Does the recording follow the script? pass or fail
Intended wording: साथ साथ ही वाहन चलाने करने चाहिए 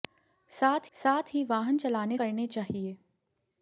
pass